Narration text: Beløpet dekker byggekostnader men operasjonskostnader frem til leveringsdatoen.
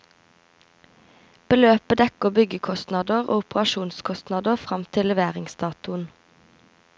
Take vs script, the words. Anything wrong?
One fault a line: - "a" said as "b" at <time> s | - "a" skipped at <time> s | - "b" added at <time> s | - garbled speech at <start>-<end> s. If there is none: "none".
- "men" said as "og" at 3.3 s